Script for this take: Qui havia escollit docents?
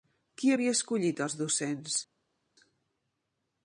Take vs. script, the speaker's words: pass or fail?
fail